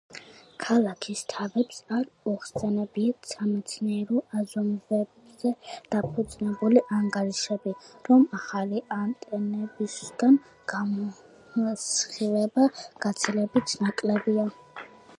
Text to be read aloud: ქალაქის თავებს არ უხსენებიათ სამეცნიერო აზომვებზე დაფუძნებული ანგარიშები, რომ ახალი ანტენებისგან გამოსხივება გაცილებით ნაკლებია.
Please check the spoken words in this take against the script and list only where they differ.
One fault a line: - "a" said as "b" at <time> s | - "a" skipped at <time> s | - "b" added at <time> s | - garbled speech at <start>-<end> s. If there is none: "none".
none